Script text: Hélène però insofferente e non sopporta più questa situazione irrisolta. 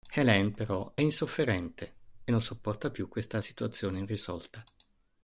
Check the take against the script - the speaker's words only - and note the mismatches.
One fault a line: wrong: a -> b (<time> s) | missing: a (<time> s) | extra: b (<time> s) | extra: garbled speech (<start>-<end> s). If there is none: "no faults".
no faults